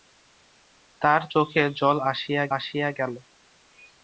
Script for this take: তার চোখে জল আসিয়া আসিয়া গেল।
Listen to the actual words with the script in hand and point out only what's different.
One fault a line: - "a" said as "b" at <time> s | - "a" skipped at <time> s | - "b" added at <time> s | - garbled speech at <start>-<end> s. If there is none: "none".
none